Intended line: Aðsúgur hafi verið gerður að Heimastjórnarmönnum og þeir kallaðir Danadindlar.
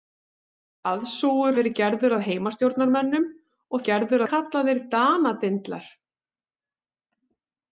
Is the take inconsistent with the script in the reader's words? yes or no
yes